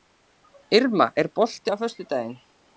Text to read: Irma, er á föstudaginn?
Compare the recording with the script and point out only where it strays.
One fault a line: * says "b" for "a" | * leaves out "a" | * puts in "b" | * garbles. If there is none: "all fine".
* puts in "bolti"